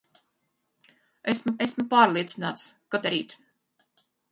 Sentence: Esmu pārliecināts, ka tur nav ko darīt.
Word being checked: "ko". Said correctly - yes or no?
no